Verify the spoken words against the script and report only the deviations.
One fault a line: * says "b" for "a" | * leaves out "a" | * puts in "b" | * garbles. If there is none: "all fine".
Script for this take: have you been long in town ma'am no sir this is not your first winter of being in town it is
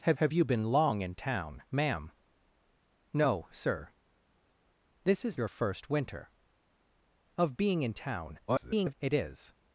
* puts in "have"
* leaves out "not"
* garbles